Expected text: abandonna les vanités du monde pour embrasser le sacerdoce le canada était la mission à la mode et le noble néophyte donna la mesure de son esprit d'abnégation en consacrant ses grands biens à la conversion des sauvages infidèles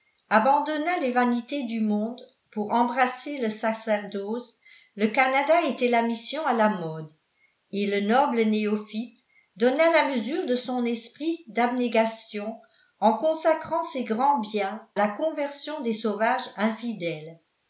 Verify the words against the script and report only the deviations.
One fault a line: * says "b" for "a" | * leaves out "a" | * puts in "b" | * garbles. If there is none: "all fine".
* leaves out "à"